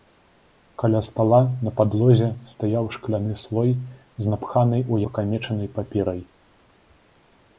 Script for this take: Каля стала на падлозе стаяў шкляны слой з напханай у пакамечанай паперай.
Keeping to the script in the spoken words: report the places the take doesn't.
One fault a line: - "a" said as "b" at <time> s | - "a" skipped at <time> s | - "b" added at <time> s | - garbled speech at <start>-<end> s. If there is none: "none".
none